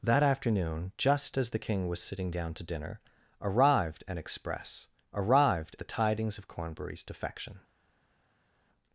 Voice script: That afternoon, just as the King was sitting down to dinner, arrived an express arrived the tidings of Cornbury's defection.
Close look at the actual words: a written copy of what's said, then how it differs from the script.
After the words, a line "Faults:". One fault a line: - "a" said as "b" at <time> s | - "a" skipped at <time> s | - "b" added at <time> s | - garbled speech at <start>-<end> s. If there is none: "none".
That afternoon, just as the King was sitting down to dinner, arrived an express arrived the tidings of Cornbury's defection.
Faults:
none